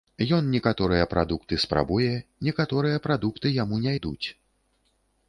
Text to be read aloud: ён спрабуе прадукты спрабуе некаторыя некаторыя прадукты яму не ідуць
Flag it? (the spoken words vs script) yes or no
yes